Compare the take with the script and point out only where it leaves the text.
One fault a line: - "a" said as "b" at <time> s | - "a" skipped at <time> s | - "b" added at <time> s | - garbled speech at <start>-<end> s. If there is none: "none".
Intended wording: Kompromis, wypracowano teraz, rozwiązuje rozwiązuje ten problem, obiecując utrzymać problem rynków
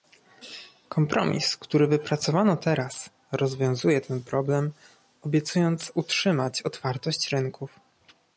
- "który" added at 1.6 s
- "rozwiązuje" skipped at 4.0 s
- "problem" said as "otwartość" at 6.6 s